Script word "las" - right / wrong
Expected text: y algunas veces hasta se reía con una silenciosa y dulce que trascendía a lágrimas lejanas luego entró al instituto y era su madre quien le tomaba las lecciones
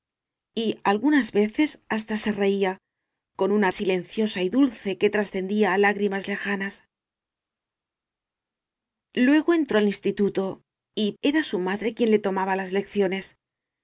right